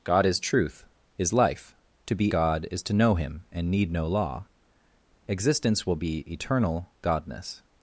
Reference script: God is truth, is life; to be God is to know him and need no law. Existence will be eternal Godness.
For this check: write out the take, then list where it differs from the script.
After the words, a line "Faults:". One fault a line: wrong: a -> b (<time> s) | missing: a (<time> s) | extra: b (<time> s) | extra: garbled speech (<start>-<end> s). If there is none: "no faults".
God is truth, is life; to be God is to know him and need no law. Existence will be eternal Godness.
Faults:
no faults